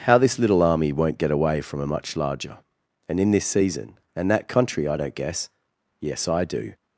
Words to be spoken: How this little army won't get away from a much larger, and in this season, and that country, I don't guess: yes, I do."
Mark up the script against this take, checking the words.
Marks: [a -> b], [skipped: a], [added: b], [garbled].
How this little army won't get away from a much larger, and in this season, and that country, I don't guess: yes, I do."